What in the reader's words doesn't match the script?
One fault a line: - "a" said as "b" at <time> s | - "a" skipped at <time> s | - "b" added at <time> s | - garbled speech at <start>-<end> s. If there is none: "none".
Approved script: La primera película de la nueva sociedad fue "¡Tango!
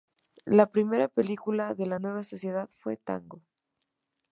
none